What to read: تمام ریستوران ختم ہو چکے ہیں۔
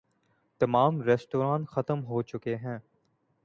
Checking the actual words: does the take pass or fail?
pass